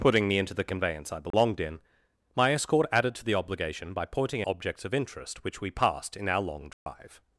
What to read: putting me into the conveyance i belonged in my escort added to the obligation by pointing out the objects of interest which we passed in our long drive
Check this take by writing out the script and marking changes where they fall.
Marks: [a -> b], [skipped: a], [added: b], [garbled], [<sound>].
putting me into the conveyance i belonged [dropout] in my escort added to the obligation by pointing [skipped: out the] objects of interest which we passed in our long drive [dropout]